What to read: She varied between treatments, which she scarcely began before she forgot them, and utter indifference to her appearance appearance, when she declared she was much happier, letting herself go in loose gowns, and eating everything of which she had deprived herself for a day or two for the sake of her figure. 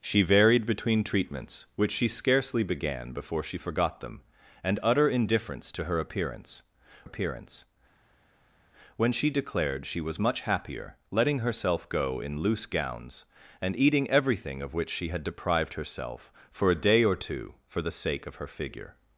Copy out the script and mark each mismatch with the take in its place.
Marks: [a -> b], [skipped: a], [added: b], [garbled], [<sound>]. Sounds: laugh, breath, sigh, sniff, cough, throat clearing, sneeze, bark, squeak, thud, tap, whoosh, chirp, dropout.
She varied between treatments, which she scarcely began before she forgot them, and utter indifference to her appearance appearance, when she declared she was much happier, letting herself go in loose gowns, and eating everything of which she had deprived herself for a day or two for the sake of her figure.